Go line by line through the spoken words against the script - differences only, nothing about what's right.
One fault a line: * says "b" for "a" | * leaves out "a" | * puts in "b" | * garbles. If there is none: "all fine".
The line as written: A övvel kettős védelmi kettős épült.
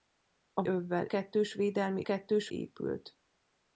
all fine